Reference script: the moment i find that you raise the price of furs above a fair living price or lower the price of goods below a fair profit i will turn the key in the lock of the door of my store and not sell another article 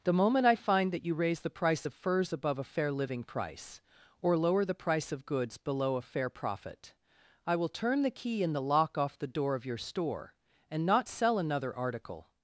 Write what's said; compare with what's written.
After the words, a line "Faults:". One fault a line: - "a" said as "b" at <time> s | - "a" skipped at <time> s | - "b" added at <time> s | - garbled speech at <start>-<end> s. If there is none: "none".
the moment i find that you raise the price of furs above a fair living price or lower the price of goods below a fair profit i will turn the key in the lock off the door of your store and not sell another article
Faults:
- "of" said as "off" at 9.0 s
- "my" said as "your" at 9.7 s